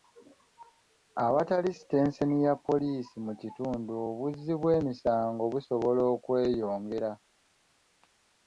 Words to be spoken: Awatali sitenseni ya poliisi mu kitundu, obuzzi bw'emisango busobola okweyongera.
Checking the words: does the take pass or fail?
pass